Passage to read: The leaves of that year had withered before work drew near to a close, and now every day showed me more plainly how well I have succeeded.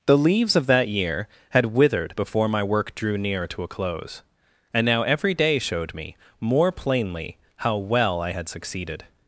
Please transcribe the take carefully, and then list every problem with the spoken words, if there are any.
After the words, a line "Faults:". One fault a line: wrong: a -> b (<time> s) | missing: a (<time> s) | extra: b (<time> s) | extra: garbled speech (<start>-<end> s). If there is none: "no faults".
The leaves of that year had withered before my work drew near to a close, and now every day showed me more plainly how well I had succeeded.
Faults:
extra: my (2.5 s)
wrong: have -> had (8.3 s)